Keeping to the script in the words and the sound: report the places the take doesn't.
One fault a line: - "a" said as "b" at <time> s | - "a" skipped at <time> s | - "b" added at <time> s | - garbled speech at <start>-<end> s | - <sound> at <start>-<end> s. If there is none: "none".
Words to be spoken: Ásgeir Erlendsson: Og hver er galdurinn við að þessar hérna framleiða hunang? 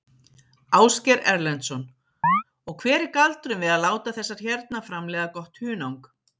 - chirp at 2.2-2.4 s
- "láta" added at 3.8 s
- "gott" added at 5.4 s